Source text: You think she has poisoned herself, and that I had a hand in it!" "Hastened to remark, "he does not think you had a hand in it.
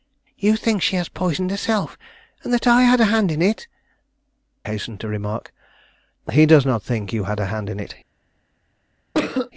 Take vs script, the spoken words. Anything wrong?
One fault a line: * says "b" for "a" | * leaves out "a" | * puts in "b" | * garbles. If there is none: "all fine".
all fine